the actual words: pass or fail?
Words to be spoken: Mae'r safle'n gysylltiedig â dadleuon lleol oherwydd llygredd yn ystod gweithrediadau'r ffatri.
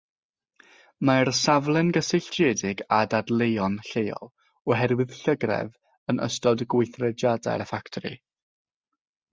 pass